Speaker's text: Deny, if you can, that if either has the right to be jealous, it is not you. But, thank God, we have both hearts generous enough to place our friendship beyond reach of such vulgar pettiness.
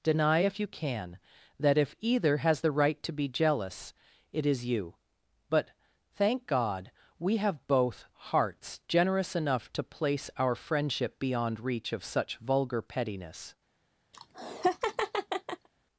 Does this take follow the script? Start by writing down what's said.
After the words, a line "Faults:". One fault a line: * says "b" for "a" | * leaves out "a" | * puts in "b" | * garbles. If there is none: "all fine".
Deny, if you can, that if either has the right to be jealous, it is you. But, thank God, we have both hearts generous enough to place our friendship beyond reach of such vulgar pettiness.
Faults:
* leaves out "not"